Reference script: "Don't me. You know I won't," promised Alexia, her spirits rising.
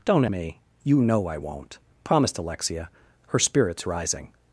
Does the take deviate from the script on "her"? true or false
false